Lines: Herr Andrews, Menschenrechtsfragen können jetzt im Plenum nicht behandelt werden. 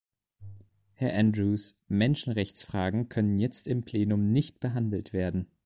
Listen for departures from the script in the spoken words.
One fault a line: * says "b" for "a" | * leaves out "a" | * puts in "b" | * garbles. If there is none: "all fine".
all fine